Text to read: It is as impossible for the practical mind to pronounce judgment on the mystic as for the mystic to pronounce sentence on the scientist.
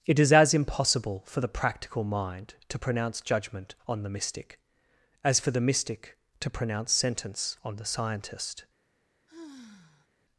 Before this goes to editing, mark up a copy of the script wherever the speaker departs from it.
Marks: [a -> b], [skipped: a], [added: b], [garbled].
It is as impossible for the practical mind to pronounce judgment on the mystic as for the mystic to pronounce sentence on the scientist.